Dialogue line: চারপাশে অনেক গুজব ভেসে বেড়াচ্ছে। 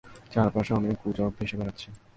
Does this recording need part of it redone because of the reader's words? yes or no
no